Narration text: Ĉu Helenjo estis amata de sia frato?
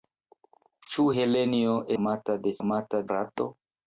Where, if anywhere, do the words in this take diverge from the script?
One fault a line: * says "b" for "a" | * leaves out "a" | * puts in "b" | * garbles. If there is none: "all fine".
* leaves out "estis"
* says "amata" for "sia"